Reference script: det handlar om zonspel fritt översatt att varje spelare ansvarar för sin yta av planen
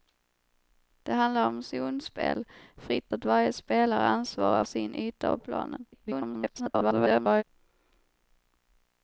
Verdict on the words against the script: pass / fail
fail